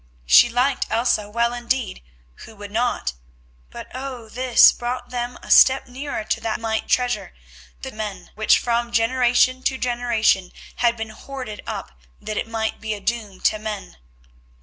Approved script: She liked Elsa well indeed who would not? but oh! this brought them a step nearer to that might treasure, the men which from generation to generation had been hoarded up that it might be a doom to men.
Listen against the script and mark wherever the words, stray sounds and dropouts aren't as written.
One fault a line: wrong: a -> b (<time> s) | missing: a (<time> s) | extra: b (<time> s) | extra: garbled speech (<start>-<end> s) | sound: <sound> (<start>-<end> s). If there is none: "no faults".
no faults